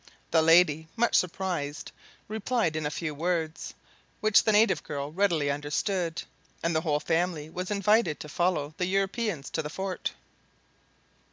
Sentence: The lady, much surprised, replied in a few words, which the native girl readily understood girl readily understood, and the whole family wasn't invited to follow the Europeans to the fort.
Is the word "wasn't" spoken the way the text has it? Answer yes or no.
no